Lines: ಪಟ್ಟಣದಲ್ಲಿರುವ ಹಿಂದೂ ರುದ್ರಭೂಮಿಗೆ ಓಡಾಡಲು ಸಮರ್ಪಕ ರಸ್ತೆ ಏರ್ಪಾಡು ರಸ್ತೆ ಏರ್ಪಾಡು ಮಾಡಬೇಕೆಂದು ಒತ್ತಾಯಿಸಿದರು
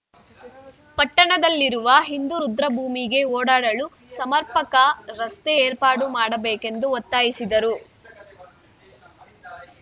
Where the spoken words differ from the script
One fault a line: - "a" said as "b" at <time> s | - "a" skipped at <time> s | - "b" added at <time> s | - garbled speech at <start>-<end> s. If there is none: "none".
- "ರಸ್ತೆ ಏರ್ಪಾಡು" skipped at 6.1 s